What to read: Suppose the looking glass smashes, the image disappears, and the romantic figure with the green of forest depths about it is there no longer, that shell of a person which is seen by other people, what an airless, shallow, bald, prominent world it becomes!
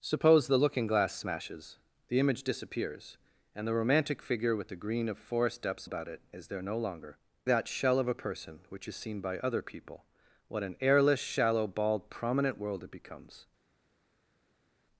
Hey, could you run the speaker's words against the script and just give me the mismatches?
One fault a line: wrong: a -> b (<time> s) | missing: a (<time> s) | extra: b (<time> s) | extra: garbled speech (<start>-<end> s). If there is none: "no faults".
no faults